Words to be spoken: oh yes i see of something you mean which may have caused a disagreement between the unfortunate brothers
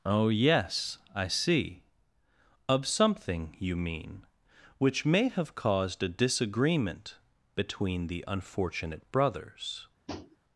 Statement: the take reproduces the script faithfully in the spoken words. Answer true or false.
true